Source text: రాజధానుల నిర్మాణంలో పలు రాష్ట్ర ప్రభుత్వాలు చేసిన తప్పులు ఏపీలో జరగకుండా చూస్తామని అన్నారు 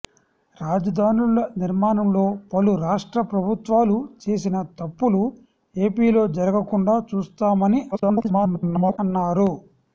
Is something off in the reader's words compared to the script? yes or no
yes